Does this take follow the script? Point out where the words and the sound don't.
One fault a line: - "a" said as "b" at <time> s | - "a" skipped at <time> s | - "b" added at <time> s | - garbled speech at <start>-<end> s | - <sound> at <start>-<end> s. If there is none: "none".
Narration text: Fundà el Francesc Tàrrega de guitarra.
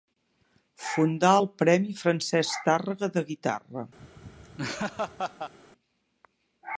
- "premi" added at 1.6 s
- laugh at 4.0-5.5 s